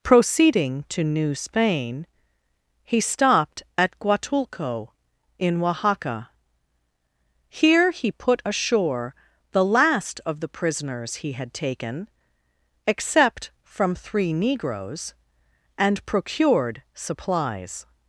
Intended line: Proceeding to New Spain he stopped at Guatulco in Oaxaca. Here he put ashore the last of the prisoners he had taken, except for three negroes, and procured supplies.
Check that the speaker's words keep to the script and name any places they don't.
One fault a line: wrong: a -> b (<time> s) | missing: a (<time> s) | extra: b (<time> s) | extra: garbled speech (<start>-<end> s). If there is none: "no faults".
wrong: for -> from (13.6 s)